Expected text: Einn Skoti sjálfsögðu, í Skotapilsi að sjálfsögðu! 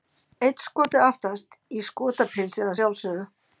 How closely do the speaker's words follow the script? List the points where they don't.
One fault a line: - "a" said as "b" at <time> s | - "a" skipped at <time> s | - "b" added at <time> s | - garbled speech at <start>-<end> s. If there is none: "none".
- "sjálfsögðu" said as "aftast" at 1.1 s